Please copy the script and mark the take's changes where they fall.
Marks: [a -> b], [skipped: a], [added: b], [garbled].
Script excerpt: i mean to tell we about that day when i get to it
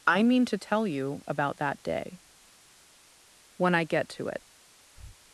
i mean to tell [we -> you] about that day when i get to it